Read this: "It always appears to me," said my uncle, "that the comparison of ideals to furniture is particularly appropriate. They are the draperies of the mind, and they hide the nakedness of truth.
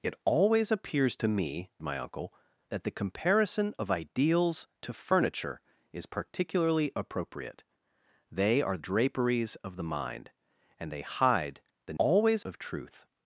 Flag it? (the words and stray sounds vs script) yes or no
yes